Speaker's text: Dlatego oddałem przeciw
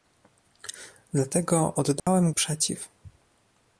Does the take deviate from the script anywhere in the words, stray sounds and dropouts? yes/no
yes